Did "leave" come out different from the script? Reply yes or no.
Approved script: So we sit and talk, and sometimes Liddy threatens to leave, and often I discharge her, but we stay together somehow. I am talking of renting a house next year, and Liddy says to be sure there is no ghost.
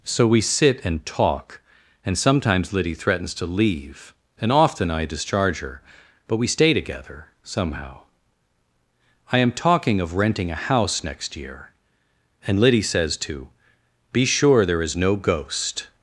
no